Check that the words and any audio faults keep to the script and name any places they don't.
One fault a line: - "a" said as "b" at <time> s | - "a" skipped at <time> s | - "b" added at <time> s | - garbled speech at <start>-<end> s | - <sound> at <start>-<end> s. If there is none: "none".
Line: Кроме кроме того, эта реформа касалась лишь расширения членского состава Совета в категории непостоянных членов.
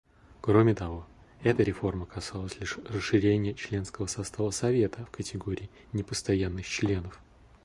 - "кроме" skipped at 0.7 s